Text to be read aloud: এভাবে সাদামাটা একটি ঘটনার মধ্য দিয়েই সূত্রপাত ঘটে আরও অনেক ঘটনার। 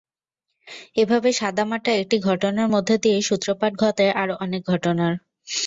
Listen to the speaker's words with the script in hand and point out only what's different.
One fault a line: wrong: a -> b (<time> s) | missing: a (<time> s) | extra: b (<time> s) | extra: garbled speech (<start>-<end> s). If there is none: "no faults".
no faults